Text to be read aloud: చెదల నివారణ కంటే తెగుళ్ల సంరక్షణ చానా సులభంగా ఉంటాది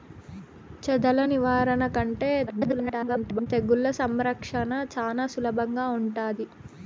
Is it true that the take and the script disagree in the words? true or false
true